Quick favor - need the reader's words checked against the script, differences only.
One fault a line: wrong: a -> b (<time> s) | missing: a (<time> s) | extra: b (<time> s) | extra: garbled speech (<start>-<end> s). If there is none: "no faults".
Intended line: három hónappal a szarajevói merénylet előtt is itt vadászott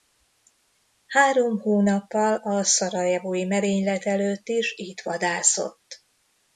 no faults